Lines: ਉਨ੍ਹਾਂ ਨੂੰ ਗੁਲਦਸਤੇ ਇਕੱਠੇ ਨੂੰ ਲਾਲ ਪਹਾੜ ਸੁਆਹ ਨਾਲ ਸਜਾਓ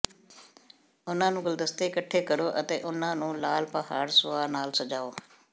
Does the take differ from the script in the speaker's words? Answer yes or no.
yes